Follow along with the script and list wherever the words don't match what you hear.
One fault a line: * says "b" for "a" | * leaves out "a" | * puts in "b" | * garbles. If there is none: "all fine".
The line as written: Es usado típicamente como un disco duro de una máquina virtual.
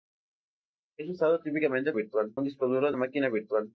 * says "virtual" for "como"
* leaves out "una"